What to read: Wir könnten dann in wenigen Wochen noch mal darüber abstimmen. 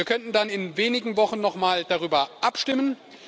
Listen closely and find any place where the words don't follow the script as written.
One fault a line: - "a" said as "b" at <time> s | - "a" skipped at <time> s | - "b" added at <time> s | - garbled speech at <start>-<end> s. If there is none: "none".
none